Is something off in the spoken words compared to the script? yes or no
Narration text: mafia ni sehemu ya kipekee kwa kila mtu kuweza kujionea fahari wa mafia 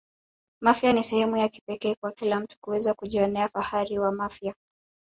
no